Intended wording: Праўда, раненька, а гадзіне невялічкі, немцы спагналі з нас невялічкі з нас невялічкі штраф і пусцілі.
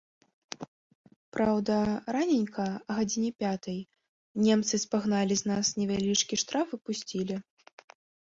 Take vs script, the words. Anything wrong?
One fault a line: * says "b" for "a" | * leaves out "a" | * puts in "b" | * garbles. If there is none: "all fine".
* says "пятай" for "невялічкі"
* leaves out "з нас невялічкі"